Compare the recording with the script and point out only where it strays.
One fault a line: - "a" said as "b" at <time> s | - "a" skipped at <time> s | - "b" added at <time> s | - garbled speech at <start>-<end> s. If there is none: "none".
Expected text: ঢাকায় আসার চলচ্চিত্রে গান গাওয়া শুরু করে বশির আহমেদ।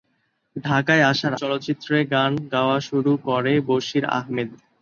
none